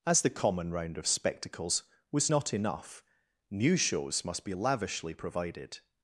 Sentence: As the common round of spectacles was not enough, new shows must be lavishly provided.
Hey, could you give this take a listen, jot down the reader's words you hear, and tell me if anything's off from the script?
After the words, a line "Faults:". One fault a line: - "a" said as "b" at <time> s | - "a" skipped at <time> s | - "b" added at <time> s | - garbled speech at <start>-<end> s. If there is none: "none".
As the common round of spectacles was not enough, new shows must be lavishly provided.
Faults:
none